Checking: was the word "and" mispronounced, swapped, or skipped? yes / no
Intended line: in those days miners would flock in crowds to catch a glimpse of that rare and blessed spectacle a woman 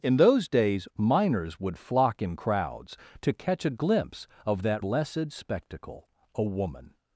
yes